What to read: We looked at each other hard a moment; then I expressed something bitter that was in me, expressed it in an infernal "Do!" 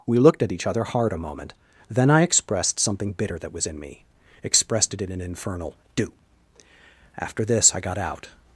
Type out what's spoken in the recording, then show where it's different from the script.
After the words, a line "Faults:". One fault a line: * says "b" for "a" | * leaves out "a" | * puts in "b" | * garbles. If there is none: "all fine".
We looked at each other hard a moment; then I expressed something bitter that was in me, expressed it in an infernal "Do!" After this I got out
Faults:
* puts in "After this I got out"